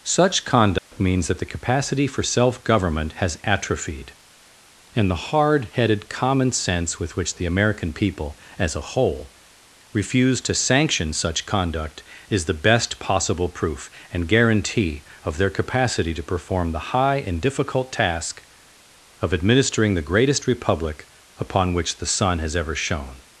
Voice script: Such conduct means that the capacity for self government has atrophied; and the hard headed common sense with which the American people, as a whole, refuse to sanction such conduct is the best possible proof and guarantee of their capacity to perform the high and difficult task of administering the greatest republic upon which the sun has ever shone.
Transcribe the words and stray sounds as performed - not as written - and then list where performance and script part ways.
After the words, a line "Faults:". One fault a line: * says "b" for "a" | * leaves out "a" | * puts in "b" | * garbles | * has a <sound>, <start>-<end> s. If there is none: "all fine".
Such conduct means that the capacity for self government has atrophied; and the hard headed common sense with which the American people, as a whole, refuse to sanction such conduct is the best possible proof and guarantee of their capacity to perform the high and difficult task of administering the greatest republic upon which the sun has ever shone.
Faults:
* has a dropout, 0.8-0.9 s